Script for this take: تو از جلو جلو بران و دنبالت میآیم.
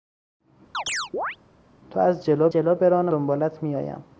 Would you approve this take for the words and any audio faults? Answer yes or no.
no